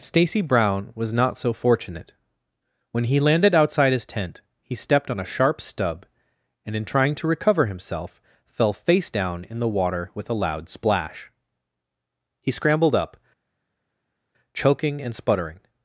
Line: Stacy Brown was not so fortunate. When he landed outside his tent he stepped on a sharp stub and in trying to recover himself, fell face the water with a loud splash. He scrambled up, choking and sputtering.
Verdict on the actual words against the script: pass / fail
fail